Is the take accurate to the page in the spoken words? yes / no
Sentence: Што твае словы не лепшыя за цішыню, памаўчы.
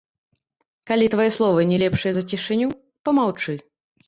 no